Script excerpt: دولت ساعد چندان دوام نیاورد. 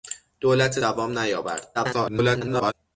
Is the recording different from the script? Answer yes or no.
yes